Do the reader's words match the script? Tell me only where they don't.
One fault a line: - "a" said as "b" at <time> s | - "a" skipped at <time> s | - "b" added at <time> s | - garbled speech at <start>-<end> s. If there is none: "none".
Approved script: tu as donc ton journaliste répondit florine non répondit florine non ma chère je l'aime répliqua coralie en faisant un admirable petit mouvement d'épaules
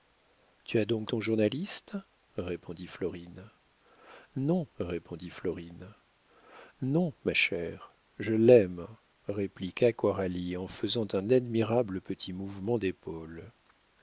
none